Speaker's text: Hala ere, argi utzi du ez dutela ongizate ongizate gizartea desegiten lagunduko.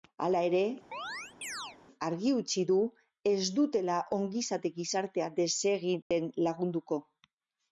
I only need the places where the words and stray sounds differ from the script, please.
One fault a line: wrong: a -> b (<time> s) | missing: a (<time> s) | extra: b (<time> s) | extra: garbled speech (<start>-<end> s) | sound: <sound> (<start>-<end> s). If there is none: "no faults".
sound: chirp (0.9-1.8 s)
missing: ongizate (4.7 s)
sound: dropout (6.0-6.1 s)